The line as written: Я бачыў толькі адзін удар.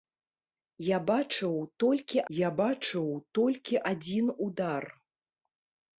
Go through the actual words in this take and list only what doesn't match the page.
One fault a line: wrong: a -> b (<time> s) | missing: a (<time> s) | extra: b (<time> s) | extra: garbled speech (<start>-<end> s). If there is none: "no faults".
extra: я бачыў толькі (2.4 s)